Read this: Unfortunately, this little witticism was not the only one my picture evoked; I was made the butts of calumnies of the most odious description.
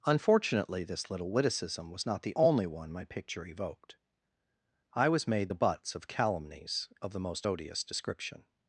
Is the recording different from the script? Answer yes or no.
no